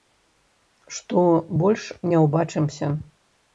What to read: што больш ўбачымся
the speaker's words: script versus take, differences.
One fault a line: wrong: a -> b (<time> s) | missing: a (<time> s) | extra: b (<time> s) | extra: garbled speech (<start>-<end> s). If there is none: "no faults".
extra: не (2.1 s)